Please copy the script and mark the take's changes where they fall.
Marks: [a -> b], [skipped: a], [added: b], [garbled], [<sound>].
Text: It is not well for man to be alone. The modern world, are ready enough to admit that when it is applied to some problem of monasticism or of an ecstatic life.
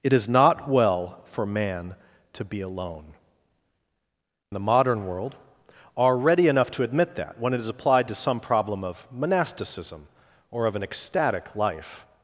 It is not well for man to be alone. The modern world, are ready enough to admit that when it is applied to some problem of monasticism or of an ecstatic life.